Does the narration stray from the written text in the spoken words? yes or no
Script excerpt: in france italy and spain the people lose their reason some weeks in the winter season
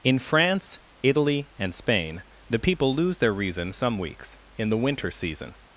no